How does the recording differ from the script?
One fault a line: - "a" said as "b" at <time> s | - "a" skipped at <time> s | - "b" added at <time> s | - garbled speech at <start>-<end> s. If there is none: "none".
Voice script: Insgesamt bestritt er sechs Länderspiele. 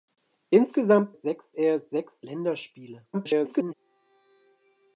- "bestritt" said as "sechs" at 1.1 s
- garbled speech at 3.1-3.7 s